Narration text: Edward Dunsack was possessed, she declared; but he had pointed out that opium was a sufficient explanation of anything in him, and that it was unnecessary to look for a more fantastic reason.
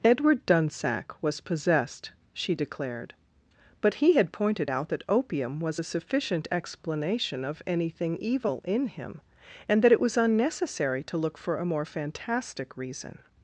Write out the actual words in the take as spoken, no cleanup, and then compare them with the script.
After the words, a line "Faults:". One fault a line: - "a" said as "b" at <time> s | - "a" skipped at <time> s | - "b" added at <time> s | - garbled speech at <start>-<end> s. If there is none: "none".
Edward Dunsack was possessed, she declared; but he had pointed out that opium was a sufficient explanation of anything evil in him, and that it was unnecessary to look for a more fantastic reason.
Faults:
- "evil" added at 8.2 s